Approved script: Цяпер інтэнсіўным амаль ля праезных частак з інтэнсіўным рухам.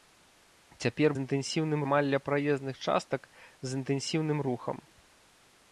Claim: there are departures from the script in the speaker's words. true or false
false